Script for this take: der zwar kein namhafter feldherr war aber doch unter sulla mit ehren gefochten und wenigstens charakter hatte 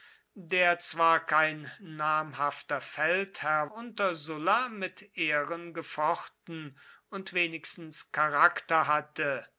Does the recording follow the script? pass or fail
fail